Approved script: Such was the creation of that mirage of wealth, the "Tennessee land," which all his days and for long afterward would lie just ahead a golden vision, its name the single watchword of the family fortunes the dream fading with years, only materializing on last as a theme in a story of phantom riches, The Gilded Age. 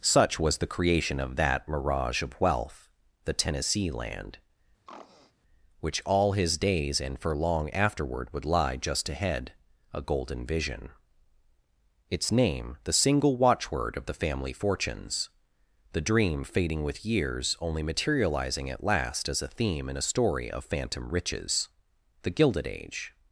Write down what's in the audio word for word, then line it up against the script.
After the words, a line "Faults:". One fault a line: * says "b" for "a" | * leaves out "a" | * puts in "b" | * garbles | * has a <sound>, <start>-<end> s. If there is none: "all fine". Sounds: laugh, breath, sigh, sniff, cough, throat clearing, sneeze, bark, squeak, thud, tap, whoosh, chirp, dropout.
Such was the creation of that mirage of wealth, the "Tennessee land," which all his days and for long afterward would lie just ahead a golden vision, its name the single watchword of the family fortunes the dream fading with years, only materializing at last as a theme in a story of phantom riches, The Gilded Age.
Faults:
* has a throat clearing, 4.9-5.3 s
* says "at" for "on"